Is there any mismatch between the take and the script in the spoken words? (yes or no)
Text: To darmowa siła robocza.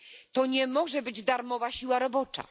yes